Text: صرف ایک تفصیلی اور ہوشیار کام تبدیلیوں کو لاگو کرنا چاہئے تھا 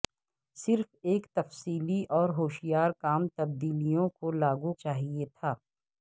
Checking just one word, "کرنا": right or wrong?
wrong